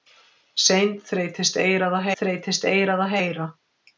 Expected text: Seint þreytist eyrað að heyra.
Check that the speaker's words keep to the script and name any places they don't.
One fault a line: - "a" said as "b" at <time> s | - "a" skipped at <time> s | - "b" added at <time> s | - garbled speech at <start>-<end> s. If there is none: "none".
- "þreytist eyrað að" added at 2.2 s